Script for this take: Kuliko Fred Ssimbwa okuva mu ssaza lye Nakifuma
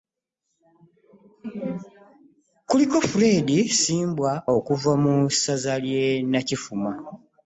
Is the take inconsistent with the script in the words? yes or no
no